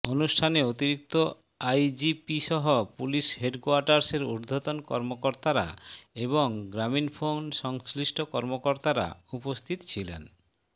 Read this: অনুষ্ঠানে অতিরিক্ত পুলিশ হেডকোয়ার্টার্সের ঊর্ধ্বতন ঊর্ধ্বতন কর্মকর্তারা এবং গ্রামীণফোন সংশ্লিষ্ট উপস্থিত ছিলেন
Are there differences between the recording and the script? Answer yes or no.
yes